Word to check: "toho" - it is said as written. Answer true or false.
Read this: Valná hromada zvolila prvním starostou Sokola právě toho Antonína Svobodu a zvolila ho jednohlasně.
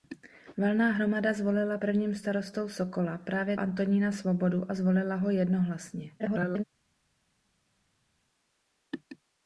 false